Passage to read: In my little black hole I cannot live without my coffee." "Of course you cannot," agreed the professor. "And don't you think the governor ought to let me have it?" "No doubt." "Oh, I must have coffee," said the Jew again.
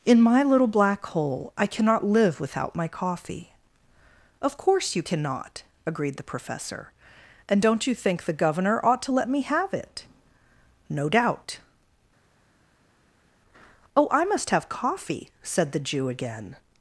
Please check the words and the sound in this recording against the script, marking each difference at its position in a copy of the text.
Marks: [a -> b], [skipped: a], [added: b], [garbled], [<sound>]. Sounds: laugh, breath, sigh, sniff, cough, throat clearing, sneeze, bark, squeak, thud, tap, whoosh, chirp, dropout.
In my little black hole I cannot live without my coffee." "Of course you cannot," agreed the professor. "And don't you think the governor ought to let me have it?" "No doubt." "Oh, I must have coffee," said the Jew again.